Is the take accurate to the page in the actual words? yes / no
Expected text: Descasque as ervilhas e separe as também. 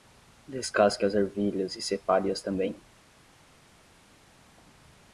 yes